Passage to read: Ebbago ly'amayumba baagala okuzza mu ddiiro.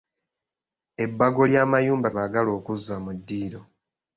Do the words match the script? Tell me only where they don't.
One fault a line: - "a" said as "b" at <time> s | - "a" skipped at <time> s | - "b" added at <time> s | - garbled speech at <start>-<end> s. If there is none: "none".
none